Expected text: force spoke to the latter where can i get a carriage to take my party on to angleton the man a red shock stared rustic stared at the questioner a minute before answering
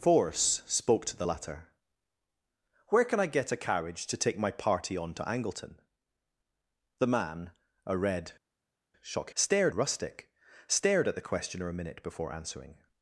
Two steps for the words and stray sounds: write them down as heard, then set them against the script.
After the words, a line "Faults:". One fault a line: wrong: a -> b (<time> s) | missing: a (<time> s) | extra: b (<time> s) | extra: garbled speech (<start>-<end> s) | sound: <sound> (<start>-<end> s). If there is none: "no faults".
force spoke to the latter where can i get a carriage to take my party on to angleton the man a red shock stared rustic stared at the questioner a minute before answering
Faults:
no faults